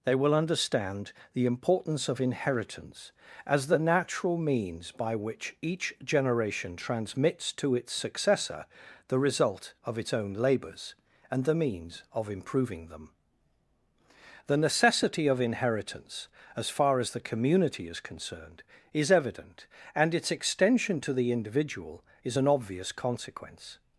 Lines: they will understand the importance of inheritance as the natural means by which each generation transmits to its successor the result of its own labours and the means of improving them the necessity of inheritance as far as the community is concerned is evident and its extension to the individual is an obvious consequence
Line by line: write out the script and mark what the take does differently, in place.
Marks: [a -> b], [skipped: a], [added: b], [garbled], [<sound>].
they will understand the importance of inheritance as the natural means by which each generation transmits to its successor the result of its own labours and the means of improving them the necessity of inheritance as far as the community is concerned is evident and its extension to the individual is an obvious consequence